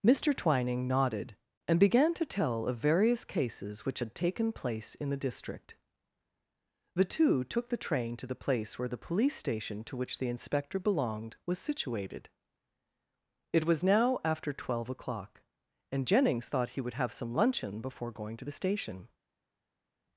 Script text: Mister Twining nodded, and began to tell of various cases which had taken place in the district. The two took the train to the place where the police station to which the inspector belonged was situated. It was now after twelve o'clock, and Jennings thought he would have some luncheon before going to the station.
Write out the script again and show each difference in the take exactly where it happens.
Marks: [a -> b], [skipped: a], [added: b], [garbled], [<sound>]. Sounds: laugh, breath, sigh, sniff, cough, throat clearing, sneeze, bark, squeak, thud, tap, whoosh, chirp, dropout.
Mister Twining nodded, and began to tell of various cases which had taken place in the district. The two took the train to the place where the police station to which the inspector belonged was situated. It was now after twelve o'clock, and Jennings thought he would have some luncheon before going to the station.